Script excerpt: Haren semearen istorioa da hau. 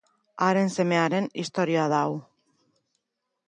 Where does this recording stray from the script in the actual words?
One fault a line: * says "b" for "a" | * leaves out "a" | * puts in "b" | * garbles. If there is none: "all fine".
all fine